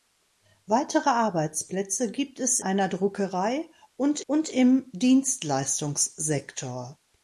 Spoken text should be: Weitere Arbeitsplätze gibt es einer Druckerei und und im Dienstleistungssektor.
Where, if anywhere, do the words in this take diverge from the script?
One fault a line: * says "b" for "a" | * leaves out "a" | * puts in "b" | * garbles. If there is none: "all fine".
all fine